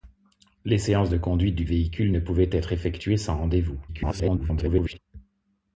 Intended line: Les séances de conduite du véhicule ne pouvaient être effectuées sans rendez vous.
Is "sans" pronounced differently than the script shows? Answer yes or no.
no